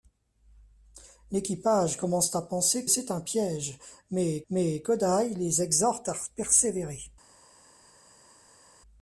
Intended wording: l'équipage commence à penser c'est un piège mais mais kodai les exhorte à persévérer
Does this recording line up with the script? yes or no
yes